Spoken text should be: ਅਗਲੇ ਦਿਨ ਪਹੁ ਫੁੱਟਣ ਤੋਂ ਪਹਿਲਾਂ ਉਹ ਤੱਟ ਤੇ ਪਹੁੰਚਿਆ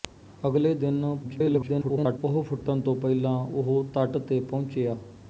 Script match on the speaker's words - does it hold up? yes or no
no